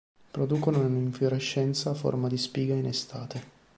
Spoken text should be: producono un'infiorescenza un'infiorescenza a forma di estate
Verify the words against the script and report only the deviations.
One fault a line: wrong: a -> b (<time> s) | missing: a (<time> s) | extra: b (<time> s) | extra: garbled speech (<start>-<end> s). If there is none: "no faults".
missing: un'infiorescenza (1.9 s)
extra: spiga in (2.4 s)